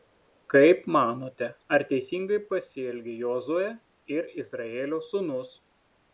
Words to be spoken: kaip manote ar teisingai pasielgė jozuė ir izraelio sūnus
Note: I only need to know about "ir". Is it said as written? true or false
true